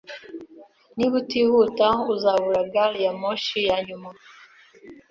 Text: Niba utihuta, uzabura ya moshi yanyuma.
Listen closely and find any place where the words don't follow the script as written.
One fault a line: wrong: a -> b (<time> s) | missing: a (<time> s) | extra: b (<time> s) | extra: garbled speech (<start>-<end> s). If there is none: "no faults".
extra: gari (2.7 s)